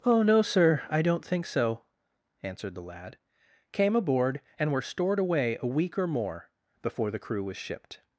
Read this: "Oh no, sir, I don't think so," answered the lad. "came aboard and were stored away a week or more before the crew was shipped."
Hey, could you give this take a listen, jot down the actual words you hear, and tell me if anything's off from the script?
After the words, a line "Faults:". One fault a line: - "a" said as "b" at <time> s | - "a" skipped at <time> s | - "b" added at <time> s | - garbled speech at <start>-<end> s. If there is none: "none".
"Oh no, sir, I don't think so," answered the lad. "came aboard and were stored away a week or more before the crew was shipped."
Faults:
none